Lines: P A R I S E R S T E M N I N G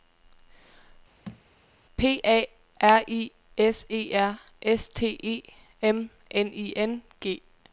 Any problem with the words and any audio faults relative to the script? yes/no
yes